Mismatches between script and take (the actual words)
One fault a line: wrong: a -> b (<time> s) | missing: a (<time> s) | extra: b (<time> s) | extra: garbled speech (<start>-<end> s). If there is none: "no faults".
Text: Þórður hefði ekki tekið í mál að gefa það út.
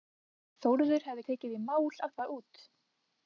missing: ekki (1.2 s)
missing: gefa (2.2 s)